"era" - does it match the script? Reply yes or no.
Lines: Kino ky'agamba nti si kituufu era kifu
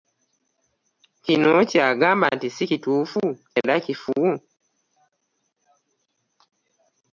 yes